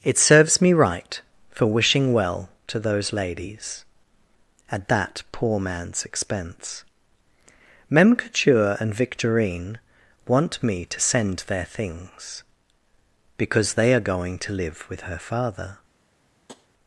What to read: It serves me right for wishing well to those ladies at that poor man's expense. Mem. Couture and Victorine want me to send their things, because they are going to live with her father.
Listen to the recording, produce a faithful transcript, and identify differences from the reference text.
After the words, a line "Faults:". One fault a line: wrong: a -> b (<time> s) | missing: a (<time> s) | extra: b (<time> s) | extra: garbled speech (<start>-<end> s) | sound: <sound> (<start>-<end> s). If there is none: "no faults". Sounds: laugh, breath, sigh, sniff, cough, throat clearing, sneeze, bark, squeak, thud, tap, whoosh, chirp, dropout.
It serves me right for wishing well to those ladies at that poor man's expense. Mem. Couture and Victorine want me to send their things, because they are going to live with her father.
Faults:
sound: tap (16.5-16.7 s)